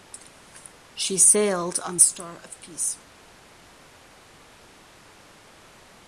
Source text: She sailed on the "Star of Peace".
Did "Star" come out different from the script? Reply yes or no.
no